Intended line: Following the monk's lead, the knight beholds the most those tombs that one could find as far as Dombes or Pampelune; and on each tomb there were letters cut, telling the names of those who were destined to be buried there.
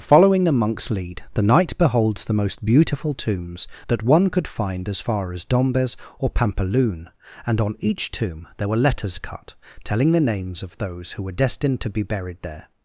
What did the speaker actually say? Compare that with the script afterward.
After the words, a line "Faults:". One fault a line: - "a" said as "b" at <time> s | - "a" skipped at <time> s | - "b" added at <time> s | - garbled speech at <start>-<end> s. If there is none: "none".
Following the monk's lead, the knight beholds the most beautiful tombs that one could find as far as Dombes or Pampelune; and on each tomb there were letters cut, telling the names of those who were destined to be buried there.
Faults:
- "those" said as "beautiful" at 2.6 s